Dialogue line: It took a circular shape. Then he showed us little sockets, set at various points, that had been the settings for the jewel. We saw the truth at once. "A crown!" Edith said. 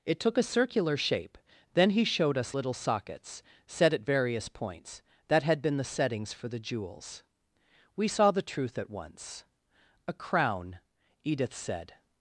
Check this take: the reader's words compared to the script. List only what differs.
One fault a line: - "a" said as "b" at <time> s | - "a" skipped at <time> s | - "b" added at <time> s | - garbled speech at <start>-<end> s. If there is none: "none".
- "jewel" said as "jewels" at 6.6 s